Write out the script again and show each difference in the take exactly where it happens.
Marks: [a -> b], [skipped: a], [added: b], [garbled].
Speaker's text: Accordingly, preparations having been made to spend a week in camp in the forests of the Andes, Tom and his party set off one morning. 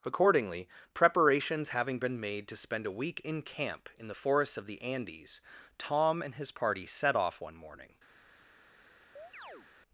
Accordingly, preparations having been made to spend a week in camp in the forests of the Andes, Tom and his party set off one morning.